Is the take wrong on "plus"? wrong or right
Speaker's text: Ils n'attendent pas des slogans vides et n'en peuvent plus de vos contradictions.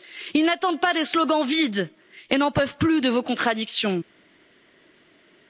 right